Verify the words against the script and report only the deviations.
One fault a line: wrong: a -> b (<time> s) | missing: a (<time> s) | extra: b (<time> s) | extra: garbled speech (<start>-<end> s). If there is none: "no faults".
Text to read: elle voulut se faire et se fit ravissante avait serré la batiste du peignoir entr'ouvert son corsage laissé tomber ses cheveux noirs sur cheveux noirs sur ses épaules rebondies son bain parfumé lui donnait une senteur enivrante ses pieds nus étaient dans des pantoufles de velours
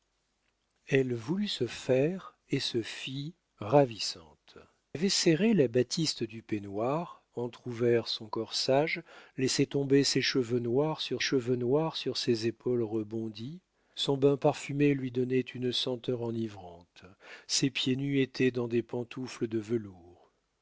no faults